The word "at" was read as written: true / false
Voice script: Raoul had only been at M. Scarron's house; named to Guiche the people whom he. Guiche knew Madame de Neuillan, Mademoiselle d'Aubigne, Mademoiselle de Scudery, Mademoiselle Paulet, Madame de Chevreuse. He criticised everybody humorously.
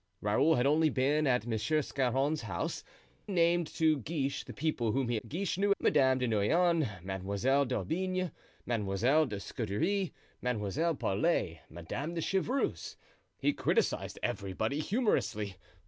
true